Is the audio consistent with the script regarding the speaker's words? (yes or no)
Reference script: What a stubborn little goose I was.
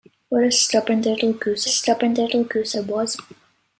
no